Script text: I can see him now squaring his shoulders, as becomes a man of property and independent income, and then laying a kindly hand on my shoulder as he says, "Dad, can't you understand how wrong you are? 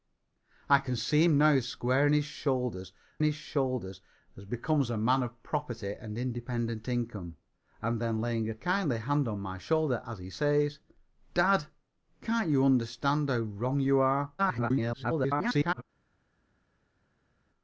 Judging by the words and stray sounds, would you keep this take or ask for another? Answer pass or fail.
fail